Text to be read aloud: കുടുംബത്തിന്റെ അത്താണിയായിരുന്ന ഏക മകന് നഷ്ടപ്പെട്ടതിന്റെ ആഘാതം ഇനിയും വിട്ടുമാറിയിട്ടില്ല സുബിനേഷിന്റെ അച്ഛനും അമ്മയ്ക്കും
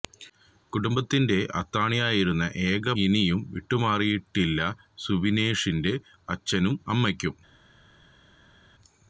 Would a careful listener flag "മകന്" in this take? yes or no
yes